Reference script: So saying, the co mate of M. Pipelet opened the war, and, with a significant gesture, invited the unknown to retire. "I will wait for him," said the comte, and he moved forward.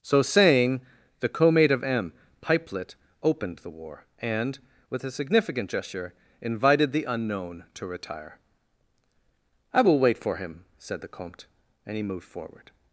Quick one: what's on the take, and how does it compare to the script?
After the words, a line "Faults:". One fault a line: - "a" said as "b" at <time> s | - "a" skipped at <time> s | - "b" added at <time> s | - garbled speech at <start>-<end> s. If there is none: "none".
So saying, the co mate of M. Pipelet opened the war, and, with a significant gesture, invited the unknown to retire. "I will wait for him," said the comte, and he moved forward.
Faults:
none